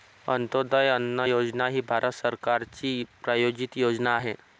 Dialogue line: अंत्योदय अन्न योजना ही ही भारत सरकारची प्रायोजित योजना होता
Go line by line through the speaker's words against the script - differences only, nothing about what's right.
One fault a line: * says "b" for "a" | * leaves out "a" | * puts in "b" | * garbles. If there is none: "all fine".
* leaves out "ही"
* says "आहे" for "होता"